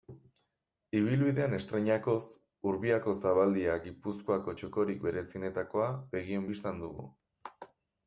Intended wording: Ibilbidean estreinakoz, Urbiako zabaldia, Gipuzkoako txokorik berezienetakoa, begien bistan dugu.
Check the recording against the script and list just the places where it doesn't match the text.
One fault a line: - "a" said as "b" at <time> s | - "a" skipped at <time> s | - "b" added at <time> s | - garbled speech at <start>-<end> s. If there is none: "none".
none